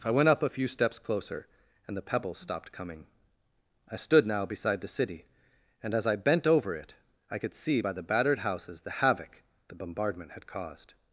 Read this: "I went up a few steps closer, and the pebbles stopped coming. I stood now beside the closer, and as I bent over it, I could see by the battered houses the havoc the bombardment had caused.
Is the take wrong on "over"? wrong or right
right